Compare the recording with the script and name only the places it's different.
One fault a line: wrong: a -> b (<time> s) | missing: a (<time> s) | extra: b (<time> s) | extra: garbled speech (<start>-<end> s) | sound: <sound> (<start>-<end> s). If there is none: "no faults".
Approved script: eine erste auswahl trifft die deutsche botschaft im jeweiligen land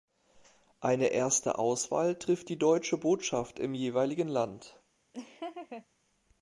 sound: laugh (5.1-5.9 s)